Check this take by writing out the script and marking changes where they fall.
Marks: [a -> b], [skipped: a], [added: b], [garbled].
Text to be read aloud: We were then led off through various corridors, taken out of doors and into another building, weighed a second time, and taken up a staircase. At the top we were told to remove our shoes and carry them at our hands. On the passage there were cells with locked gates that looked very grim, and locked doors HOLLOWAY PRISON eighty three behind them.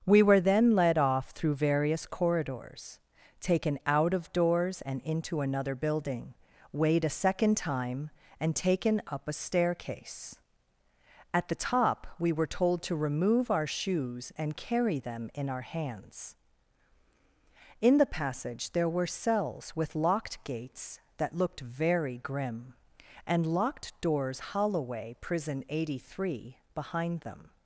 We were then led off through various corridors, taken out of doors and into another building, weighed a second time, and taken up a staircase. At the top we were told to remove our shoes and carry them [at -> in] our hands. [On -> In] the passage there were cells with locked gates that looked very grim, and locked doors HOLLOWAY PRISON eighty three behind them.